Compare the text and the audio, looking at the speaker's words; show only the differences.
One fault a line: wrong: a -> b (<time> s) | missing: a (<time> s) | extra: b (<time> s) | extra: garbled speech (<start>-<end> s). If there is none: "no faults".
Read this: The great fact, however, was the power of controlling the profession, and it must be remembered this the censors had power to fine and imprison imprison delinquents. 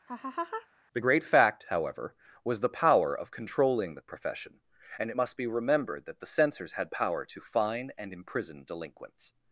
wrong: this -> that (6.1 s)
missing: imprison (8.6 s)